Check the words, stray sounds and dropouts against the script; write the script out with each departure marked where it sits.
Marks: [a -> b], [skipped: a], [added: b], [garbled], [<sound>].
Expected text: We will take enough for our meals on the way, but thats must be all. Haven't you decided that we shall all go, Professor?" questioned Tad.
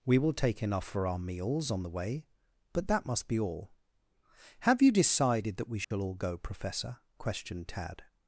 We will take enough for our meals on the way, but [thats -> that] must be all. [Haven't -> Have] you decided that we shall [dropout] all go, Professor?" questioned Tad.